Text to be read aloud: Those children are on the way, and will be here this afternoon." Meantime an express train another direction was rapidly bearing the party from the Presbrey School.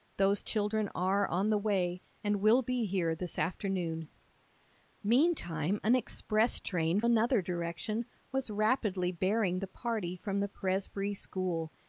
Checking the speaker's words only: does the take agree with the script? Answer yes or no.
yes